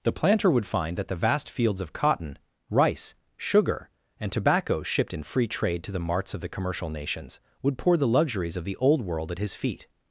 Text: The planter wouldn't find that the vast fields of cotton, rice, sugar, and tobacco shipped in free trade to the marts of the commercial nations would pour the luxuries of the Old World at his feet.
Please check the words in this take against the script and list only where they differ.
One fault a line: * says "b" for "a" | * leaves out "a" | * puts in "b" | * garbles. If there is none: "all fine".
* says "would" for "wouldn't"